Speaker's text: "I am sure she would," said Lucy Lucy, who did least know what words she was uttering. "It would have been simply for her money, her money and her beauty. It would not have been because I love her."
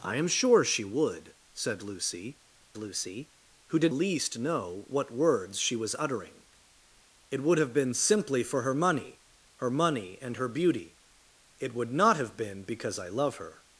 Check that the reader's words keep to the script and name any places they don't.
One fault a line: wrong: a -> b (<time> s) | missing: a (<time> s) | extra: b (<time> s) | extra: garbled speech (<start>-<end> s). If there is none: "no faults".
no faults